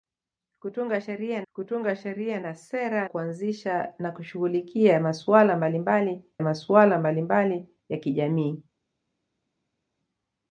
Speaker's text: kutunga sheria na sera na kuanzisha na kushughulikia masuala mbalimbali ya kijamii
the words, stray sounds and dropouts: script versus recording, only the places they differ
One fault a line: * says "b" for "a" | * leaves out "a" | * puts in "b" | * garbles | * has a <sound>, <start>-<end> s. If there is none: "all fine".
* puts in "kutunga sheria"
* leaves out "na"
* puts in "masuala mbalimbali"